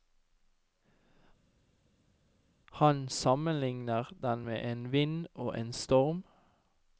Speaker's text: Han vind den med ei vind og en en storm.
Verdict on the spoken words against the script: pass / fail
fail